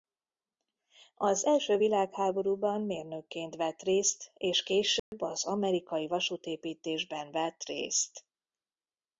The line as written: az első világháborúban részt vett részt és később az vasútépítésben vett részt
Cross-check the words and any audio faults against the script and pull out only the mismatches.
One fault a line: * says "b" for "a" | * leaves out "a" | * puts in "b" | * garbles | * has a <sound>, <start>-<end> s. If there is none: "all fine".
* says "mérnökként" for "részt"
* has a dropout, 5.0-5.1 s
* puts in "amerikai"